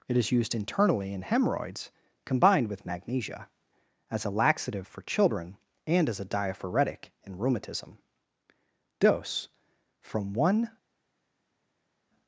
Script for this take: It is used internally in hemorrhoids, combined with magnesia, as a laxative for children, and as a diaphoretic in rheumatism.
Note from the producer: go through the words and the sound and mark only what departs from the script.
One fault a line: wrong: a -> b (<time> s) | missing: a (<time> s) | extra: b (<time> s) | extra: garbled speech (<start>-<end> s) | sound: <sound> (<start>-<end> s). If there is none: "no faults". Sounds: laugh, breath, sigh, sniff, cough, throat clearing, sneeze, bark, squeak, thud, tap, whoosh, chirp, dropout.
extra: Dose from one (9.0 s)